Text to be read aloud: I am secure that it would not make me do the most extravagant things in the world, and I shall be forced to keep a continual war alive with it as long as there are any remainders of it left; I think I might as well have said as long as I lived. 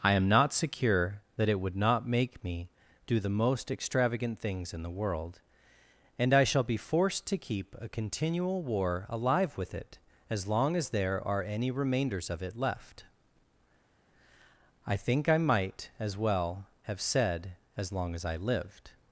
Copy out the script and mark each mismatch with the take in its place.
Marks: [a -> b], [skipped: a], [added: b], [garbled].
I am [added: not] secure that it would not make me do the most extravagant things in the world, and I shall be forced to keep a continual war alive with it as long as there are any remainders of it left; I think I might as well have said as long as I lived.